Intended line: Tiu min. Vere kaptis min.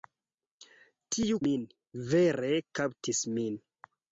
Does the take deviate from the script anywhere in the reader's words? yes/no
no